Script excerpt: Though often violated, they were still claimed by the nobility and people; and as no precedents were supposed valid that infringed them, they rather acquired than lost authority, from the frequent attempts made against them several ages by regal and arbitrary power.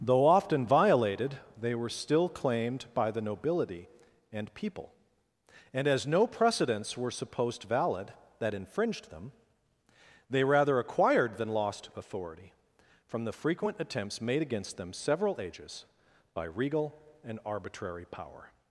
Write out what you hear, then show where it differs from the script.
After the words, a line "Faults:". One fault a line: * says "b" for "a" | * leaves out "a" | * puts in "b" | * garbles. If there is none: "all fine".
Though often violated, they were still claimed by the nobility and people; and as no precedents were supposed valid that infringed them, they rather acquired than lost authority, from the frequent attempts made against them several ages by regal and arbitrary power.
Faults:
all fine